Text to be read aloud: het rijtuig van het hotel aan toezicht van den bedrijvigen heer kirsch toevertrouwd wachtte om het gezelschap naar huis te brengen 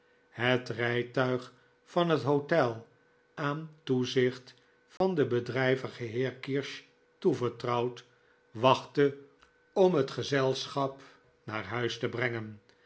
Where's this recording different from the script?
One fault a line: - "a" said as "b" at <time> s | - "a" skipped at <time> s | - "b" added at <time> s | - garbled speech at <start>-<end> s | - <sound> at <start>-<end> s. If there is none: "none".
- dropout at 5.0-5.0 s